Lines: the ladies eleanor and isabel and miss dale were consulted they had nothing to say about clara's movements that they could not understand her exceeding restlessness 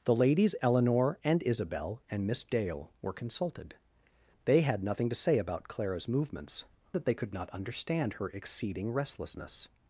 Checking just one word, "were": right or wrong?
right